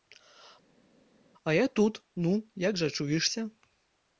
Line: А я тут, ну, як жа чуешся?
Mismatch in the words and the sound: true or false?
false